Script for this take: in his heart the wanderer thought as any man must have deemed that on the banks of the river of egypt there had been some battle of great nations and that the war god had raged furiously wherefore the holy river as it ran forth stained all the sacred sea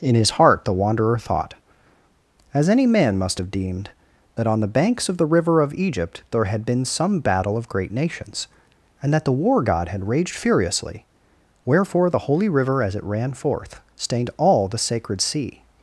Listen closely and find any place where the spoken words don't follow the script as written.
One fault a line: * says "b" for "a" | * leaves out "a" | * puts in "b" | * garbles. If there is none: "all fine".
all fine